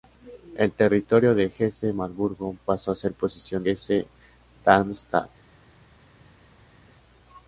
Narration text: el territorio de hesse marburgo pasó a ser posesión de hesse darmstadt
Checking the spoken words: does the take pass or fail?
fail